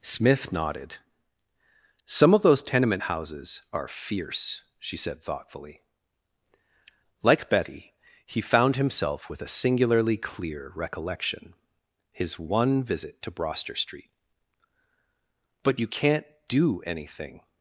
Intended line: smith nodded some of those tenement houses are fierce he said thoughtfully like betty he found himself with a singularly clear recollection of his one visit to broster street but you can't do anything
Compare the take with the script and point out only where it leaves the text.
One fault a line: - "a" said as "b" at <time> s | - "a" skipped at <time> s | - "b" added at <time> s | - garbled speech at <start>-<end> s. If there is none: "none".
- "he" said as "she" at 4.8 s
- "of" skipped at 11.5 s